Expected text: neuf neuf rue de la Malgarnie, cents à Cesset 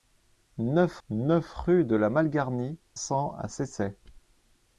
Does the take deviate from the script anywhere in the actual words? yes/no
no